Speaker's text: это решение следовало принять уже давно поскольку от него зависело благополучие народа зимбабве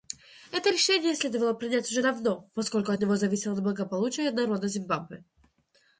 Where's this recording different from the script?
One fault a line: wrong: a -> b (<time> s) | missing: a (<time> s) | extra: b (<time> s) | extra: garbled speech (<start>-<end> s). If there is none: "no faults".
no faults